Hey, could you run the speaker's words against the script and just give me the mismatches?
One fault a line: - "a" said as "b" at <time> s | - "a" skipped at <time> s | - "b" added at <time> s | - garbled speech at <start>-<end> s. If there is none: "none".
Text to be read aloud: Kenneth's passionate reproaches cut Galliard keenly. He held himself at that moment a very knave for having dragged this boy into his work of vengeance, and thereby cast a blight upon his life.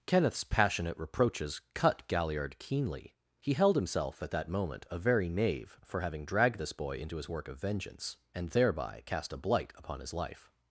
none